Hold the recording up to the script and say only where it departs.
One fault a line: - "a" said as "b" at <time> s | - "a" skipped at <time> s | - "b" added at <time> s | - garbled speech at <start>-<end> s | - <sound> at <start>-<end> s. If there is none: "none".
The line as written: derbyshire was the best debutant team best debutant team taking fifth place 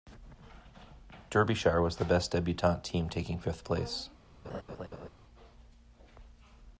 - "best debutant team" skipped at 3.1 s
- laugh at 4.4-5.1 s